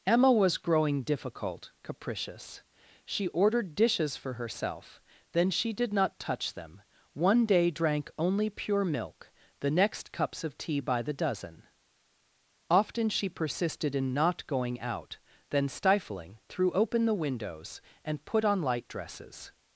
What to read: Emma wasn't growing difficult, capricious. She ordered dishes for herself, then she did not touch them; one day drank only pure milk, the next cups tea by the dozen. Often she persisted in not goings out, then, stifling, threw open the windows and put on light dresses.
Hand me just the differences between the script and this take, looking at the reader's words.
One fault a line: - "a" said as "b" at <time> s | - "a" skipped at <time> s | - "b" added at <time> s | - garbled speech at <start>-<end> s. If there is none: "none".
- "wasn't" said as "was" at 0.3 s
- "of" added at 10.4 s
- "goings" said as "going" at 14.5 s